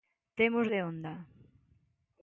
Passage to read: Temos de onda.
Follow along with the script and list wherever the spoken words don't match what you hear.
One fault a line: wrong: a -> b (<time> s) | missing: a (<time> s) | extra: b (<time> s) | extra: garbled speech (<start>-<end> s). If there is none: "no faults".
no faults